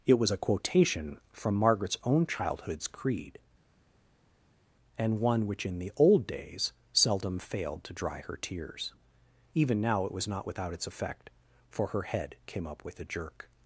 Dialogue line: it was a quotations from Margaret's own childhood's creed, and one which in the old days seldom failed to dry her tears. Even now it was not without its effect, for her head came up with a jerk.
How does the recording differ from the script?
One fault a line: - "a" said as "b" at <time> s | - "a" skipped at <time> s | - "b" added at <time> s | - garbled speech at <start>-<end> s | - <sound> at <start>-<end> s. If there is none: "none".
- "quotations" said as "quotation" at 0.4 s